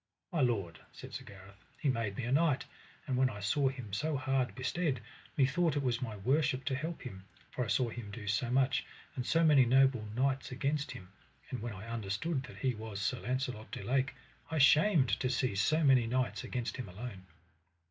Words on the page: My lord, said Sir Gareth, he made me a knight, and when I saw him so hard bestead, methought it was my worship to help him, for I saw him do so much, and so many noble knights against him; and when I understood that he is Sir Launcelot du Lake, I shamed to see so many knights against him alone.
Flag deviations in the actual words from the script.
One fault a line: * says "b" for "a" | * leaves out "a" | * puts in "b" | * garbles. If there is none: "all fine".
* says "was" for "is"